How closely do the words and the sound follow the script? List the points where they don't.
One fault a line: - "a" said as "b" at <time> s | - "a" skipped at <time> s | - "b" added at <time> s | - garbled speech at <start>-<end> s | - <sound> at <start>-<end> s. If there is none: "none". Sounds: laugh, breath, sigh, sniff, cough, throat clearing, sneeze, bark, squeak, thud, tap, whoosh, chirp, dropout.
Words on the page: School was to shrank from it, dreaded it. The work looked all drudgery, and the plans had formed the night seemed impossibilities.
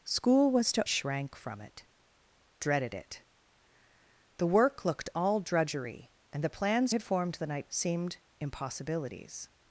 none